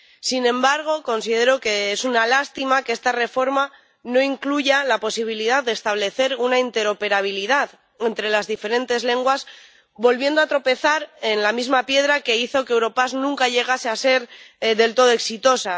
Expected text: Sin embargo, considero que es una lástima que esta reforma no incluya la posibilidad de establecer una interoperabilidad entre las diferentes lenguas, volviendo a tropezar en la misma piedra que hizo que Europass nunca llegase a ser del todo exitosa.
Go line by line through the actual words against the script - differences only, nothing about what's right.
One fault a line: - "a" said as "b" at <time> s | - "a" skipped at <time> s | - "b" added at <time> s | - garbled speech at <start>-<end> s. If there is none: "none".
none